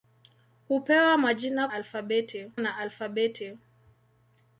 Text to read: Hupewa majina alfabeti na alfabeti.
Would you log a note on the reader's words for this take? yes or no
no